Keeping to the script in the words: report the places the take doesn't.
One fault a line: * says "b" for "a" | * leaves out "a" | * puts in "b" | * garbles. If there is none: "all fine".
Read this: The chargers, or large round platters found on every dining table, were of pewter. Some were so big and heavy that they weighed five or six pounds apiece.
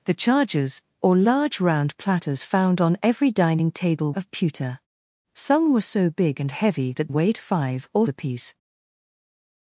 * leaves out "were"
* leaves out "they"
* leaves out "six pounds"